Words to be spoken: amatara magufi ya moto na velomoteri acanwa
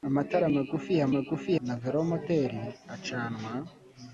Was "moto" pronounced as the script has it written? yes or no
no